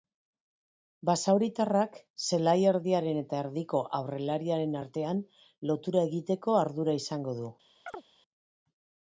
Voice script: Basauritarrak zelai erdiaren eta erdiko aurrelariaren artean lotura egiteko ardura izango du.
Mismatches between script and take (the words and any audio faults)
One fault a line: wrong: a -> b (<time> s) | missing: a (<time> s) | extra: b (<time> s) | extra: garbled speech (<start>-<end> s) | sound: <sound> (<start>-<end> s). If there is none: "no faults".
sound: chirp (7.9-8.0 s)